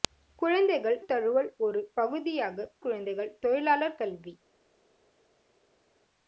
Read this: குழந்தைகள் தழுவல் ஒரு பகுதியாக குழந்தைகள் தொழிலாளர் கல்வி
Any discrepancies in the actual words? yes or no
no